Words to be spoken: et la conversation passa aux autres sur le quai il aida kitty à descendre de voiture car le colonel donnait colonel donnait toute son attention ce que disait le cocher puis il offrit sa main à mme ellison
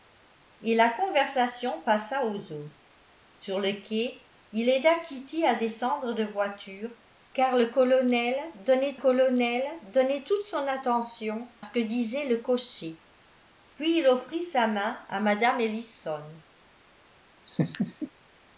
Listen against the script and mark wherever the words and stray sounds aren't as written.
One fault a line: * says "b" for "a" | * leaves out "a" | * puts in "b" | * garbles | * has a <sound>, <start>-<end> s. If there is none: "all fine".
* has a laugh, 17.5-18.1 s